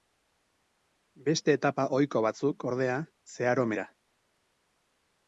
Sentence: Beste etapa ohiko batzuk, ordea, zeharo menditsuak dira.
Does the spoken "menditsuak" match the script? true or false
false